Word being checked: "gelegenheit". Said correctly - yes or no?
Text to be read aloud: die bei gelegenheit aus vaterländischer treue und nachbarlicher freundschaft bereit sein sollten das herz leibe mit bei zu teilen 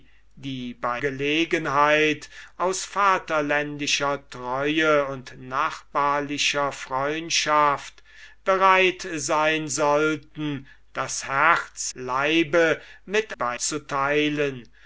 yes